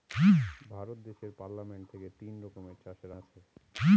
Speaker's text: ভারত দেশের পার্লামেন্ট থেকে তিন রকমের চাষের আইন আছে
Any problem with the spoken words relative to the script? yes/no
yes